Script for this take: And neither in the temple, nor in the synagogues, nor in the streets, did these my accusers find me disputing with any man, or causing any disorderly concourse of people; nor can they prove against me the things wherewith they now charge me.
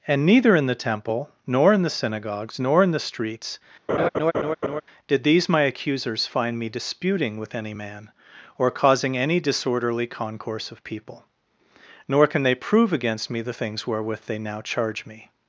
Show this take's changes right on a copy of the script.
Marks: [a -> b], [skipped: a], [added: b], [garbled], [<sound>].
And neither in the temple, nor in the synagogues, nor in the streets, [laugh] did these my accusers find me disputing with any man, or causing any disorderly concourse of people; nor can they prove against me the things wherewith they now charge me.